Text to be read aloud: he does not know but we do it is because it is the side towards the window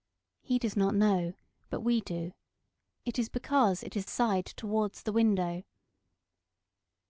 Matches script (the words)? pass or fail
fail